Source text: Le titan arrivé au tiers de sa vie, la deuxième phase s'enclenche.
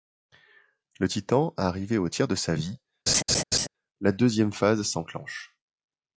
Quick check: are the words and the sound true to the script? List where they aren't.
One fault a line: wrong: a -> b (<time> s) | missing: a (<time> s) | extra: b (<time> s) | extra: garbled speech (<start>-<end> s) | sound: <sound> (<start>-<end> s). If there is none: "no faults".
sound: laugh (3.1-3.7 s)